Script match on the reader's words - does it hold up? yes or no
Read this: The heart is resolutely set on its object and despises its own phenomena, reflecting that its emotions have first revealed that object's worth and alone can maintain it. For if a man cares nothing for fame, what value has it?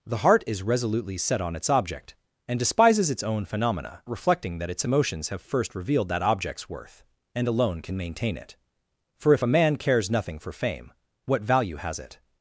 yes